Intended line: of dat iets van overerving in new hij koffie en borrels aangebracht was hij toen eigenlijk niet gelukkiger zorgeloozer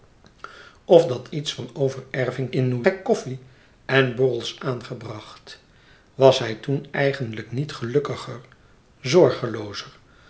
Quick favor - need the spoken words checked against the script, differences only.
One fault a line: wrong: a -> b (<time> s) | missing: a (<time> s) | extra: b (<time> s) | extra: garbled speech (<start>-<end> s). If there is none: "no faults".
no faults